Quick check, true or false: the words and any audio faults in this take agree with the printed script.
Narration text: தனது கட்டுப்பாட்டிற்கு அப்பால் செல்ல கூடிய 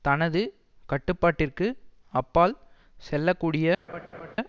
false